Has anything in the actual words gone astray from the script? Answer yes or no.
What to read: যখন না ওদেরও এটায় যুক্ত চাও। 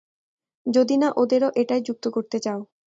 yes